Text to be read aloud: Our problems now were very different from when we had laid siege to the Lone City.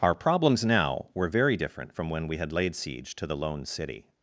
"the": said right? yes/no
yes